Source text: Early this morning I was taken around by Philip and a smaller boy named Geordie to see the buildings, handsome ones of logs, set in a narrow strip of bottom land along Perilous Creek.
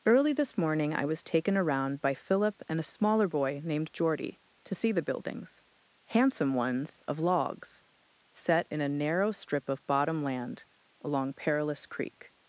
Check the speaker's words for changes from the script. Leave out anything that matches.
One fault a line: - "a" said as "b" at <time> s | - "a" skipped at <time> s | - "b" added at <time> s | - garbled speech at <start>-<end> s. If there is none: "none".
none